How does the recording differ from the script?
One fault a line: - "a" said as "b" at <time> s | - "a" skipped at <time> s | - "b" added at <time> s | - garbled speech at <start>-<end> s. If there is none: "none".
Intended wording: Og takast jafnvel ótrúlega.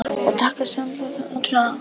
none